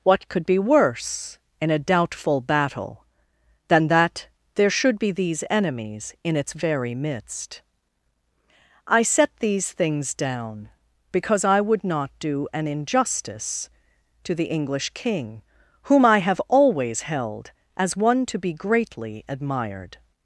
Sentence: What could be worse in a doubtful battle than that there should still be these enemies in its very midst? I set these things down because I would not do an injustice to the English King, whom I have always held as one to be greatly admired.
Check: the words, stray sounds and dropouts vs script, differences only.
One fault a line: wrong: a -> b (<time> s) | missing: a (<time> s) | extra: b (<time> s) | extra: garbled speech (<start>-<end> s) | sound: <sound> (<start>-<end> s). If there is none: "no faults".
missing: still (5.0 s)